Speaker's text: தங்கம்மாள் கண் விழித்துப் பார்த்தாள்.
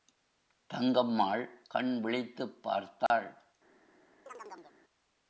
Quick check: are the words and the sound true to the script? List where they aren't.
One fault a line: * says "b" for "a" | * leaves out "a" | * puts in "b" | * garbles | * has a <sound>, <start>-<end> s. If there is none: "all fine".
* has a dropout, 3.1-3.1 s
* has a chirp, 4.3-4.8 s